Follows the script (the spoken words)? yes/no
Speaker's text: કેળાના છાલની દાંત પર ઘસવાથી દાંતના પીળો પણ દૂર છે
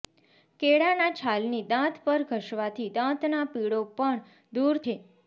yes